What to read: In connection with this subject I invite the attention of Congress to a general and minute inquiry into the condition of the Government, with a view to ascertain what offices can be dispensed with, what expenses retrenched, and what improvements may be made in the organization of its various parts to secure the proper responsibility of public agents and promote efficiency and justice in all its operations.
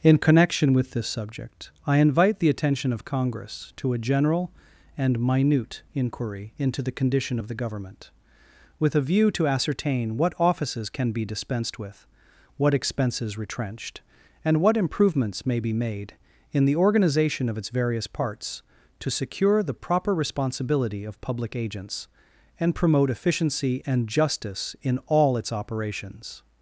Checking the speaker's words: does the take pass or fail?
pass